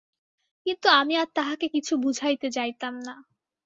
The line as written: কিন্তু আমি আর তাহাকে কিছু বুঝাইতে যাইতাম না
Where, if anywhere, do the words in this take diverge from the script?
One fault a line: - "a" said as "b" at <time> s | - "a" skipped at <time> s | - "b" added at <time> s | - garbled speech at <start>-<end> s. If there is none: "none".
none